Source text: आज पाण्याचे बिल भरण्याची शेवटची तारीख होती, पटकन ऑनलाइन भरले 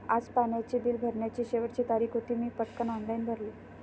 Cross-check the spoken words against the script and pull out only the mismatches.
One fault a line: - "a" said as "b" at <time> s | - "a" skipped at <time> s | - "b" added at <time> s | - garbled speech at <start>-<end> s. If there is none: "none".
- "मी" added at 2.4 s